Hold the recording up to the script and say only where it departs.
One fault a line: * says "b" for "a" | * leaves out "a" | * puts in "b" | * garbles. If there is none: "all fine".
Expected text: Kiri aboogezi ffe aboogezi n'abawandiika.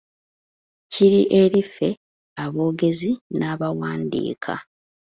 * says "eri" for "aboogezi"